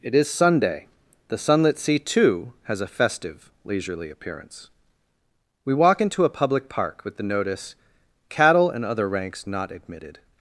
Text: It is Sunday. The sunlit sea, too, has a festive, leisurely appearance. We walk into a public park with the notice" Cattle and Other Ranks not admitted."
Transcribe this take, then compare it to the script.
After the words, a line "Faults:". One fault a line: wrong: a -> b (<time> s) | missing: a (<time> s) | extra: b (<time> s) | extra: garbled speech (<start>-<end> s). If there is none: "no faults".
It is Sunday. The sunlit sea, too, has a festive, leisurely appearance. We walk into a public park with the notice" Cattle and Other Ranks not admitted."
Faults:
no faults